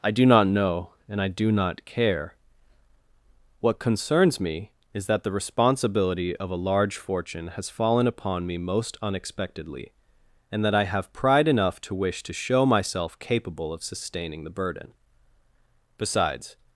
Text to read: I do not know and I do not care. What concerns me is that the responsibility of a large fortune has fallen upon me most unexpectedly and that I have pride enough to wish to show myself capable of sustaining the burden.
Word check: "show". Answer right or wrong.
right